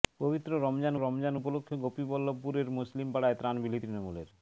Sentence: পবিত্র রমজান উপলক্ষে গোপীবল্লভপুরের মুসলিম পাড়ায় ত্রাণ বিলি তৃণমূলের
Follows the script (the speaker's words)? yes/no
no